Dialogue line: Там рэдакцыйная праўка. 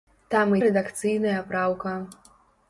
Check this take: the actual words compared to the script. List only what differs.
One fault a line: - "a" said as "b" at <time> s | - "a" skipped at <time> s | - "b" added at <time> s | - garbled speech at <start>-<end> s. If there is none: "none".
none